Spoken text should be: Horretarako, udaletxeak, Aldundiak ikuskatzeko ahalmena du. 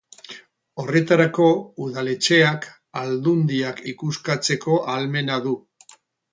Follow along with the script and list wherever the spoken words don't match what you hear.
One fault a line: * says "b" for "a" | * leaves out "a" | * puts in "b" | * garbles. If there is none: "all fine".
all fine